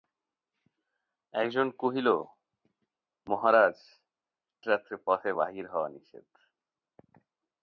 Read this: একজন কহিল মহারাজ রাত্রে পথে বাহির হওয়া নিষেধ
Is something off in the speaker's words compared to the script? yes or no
no